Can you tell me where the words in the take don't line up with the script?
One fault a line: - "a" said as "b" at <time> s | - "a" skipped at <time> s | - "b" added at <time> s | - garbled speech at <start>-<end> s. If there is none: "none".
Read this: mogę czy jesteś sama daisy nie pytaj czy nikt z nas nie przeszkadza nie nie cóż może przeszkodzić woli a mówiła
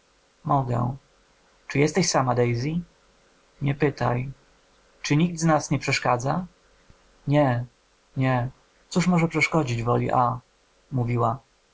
none